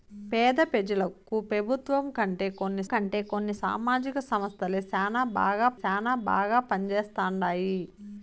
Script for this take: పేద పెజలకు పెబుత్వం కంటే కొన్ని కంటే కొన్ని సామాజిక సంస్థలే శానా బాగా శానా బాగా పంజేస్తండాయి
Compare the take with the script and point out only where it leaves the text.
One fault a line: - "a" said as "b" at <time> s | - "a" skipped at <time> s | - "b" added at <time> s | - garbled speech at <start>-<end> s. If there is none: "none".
none